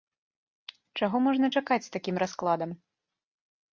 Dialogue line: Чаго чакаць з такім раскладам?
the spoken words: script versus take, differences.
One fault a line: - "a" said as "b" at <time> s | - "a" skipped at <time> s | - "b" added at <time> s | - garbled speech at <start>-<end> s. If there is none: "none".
- "можна" added at 1.3 s